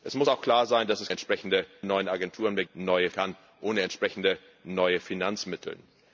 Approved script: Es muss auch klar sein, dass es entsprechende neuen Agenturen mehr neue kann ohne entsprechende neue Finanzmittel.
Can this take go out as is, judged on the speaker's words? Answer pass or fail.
pass